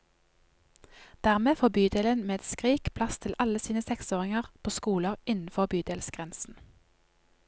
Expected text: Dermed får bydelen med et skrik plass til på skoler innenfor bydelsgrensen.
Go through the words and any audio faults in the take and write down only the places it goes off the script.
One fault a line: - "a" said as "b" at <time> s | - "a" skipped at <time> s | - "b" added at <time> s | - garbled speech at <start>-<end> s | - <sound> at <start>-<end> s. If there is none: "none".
- "alle sine seksåringer" added at 3.5 s